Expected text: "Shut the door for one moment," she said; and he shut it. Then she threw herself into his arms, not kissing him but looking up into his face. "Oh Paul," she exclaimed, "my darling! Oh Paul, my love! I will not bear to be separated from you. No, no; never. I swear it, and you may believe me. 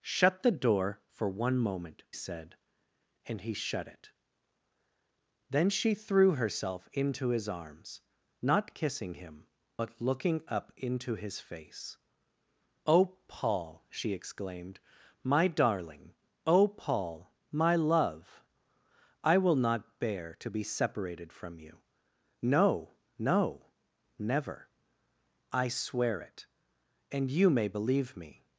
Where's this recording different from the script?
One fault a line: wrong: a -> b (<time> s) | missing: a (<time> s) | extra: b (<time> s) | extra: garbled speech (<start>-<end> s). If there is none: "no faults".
missing: she (2.0 s)